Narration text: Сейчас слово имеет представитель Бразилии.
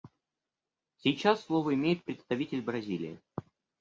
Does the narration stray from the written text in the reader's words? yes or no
no